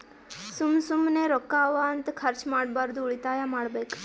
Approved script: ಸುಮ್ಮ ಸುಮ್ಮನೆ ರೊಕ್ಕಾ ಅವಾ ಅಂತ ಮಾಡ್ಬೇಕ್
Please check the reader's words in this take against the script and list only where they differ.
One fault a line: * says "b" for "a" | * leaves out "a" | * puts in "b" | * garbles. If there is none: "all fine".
* puts in "ಖರ್ಚ ಮಾಡ್ಬಾರ್ದು ಉಳಿತಾಯ"